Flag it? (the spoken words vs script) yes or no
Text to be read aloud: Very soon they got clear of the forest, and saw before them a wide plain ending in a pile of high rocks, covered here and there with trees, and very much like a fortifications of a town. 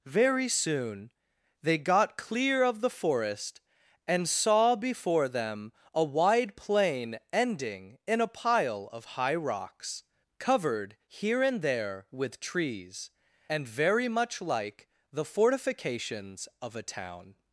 yes